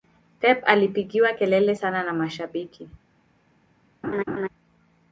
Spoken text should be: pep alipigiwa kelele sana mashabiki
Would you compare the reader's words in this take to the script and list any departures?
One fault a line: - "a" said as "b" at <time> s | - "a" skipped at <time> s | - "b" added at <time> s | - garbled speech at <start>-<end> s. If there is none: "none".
- "na" added at 2.0 s